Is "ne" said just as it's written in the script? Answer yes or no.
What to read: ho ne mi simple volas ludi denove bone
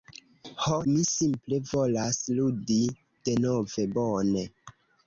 no